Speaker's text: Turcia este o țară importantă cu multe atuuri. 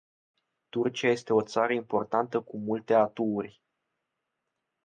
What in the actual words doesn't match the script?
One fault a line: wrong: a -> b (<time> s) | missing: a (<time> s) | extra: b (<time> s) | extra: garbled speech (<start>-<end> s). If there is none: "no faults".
no faults